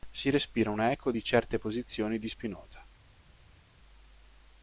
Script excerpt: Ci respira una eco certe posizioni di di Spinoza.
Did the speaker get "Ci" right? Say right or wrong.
wrong